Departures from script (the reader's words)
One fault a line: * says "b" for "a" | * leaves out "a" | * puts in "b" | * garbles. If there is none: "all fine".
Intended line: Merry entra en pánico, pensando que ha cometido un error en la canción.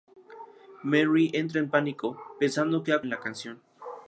* leaves out "cometido un error"